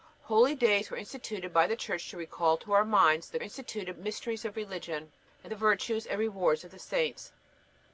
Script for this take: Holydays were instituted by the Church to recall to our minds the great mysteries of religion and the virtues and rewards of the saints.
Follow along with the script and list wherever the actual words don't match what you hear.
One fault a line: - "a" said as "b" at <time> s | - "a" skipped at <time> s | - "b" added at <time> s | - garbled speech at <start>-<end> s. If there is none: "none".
- "great" said as "instituted" at 3.4 s